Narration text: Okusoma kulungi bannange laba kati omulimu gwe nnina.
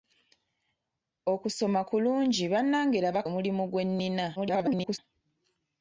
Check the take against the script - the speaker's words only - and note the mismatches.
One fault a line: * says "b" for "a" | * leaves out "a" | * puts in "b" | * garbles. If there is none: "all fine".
* leaves out "kati"
* garbles